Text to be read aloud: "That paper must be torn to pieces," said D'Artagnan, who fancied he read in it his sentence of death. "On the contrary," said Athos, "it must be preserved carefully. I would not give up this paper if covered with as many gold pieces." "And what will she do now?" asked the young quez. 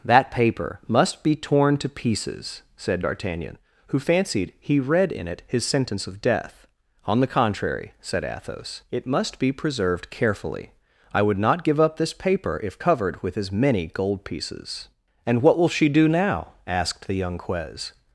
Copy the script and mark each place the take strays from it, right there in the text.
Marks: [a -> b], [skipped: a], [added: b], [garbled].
"That paper must be torn to pieces," said D'Artagnan, who fancied he read in it his sentence of death. "On the contrary," said Athos, "it must be preserved carefully. I would not give up this paper if covered with as many gold pieces." "And what will she do now?" asked the young quez.